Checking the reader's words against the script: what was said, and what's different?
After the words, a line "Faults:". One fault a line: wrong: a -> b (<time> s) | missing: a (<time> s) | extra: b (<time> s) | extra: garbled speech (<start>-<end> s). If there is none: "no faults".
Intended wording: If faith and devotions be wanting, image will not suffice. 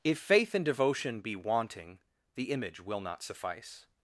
If faith and devotion be wanting, the image will not suffice.
Faults:
wrong: devotions -> devotion (0.6 s)
extra: the (2.4 s)